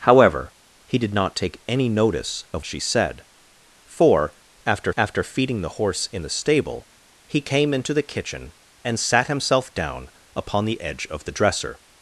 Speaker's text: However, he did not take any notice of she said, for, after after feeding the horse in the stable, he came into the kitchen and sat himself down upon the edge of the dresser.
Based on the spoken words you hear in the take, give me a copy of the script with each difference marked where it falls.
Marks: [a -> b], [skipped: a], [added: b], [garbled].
However, he did not take any notice of she said, for, after after feeding the horse in the stable, he came into the kitchen and sat himself down upon the edge of the dresser.